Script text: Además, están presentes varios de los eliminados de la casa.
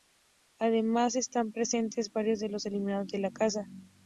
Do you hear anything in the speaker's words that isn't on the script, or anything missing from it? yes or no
no